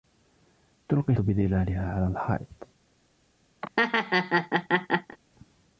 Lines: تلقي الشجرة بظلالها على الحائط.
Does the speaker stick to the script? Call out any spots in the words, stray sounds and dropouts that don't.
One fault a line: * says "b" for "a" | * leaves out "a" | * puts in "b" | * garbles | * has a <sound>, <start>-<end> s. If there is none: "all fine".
* leaves out "الشجرة"
* has a laugh, 3.6-5.2 s